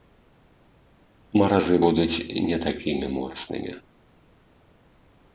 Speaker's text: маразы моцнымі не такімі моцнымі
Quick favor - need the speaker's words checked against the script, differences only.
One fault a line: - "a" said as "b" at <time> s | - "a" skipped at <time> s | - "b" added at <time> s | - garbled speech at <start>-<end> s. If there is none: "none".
- "моцнымі" said as "будуць" at 1.8 s